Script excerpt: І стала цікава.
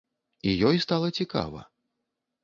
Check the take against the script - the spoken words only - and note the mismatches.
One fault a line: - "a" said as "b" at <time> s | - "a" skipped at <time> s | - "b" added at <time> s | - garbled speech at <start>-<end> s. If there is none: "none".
- "ёй" added at 0.7 s